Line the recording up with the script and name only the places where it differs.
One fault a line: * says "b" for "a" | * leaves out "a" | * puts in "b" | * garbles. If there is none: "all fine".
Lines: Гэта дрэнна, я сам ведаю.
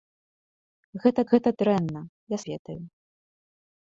* puts in "гэта"
* leaves out "сам"